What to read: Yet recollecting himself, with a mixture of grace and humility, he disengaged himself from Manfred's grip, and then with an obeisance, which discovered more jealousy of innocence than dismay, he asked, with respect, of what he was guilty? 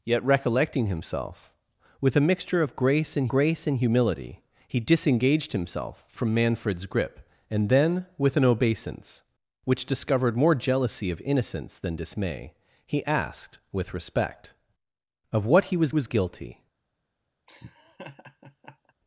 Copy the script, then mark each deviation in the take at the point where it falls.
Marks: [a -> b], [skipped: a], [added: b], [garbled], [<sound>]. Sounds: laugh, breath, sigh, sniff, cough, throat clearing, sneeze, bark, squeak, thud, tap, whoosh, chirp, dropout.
Yet recollecting himself, with a mixture of grace and [added: grace and] humility, he disengaged himself from Manfred's grip, and then with an obeisance, which discovered more jealousy of innocence than dismay, he asked, with respect, of what he was [added: was] guilty? [laugh]